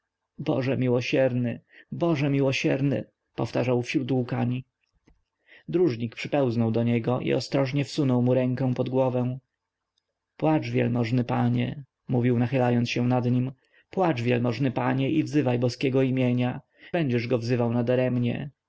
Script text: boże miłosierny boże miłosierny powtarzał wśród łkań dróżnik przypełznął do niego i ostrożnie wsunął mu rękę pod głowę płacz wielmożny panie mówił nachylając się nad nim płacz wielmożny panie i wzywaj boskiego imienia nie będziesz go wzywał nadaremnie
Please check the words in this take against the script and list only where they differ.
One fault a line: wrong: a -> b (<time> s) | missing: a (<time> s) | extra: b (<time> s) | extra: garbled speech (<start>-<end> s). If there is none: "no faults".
missing: nie (16.6 s)